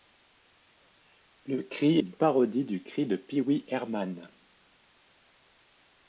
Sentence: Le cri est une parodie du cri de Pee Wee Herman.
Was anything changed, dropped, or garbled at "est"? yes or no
yes